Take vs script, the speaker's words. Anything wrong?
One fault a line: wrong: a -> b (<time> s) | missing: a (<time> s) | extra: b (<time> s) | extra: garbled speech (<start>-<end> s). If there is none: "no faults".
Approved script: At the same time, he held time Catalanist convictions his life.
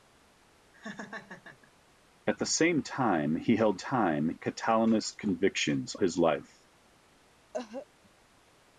no faults